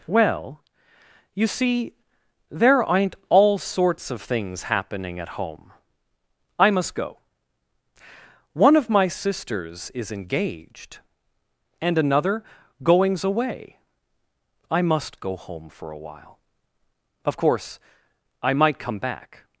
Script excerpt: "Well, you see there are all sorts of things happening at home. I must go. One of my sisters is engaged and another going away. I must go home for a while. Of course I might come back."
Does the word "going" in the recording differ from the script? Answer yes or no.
yes